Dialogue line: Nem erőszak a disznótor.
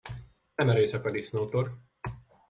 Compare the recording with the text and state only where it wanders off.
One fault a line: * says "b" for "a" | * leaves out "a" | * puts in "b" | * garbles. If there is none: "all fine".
all fine